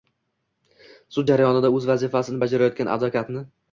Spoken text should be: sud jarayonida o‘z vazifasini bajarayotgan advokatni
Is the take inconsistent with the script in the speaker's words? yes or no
no